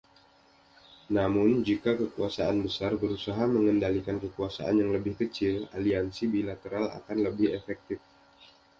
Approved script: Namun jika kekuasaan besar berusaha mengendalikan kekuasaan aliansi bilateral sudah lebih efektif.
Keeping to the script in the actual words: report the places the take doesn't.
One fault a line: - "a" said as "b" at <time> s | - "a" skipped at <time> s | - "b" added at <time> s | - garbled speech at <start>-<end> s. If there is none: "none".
- "yang lebih kecil" added at 4.8 s
- "sudah" said as "akan" at 7.0 s